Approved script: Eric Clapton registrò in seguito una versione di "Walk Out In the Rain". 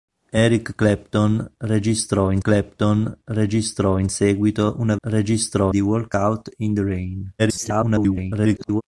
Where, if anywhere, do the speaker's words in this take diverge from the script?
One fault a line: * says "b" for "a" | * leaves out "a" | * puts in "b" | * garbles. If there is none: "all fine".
* puts in "Clapton registrò in"
* says "registrò" for "versione"
* garbles